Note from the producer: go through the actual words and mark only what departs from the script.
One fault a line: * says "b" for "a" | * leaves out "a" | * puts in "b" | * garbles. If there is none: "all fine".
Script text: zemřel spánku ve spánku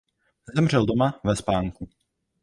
* says "doma" for "spánku"